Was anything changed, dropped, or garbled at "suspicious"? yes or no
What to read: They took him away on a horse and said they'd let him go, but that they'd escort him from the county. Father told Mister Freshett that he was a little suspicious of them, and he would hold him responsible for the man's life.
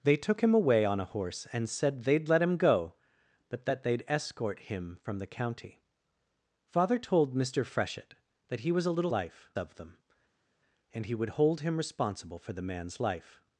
yes